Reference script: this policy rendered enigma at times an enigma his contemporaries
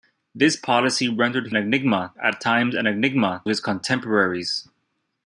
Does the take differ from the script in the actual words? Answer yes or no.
no